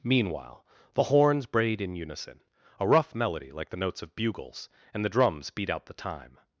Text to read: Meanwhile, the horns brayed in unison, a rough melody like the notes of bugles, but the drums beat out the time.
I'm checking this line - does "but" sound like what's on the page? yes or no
no